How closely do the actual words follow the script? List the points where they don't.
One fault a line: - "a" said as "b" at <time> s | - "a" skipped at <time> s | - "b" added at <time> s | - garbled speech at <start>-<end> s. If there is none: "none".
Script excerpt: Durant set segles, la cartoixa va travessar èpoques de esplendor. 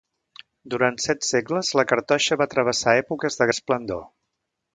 none